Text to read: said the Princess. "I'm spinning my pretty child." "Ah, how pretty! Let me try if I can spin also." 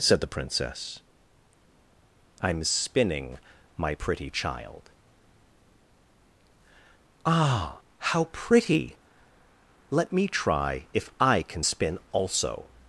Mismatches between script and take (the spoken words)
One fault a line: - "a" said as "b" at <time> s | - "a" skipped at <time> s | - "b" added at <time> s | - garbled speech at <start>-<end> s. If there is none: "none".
none